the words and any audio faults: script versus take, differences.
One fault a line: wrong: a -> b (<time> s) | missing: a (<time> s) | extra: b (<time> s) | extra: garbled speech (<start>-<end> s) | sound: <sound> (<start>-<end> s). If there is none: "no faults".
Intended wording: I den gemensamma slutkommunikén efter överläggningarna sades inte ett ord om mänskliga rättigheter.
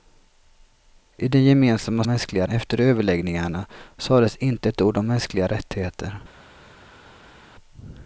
wrong: slutkommunikén -> mänskliga (2.1 s)